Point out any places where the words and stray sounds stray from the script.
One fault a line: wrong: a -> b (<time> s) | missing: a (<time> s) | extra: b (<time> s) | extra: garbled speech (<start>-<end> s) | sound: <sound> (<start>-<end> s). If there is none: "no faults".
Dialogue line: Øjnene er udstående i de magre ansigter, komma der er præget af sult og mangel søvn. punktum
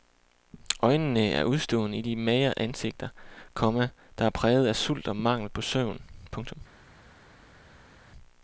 extra: på (5.5 s)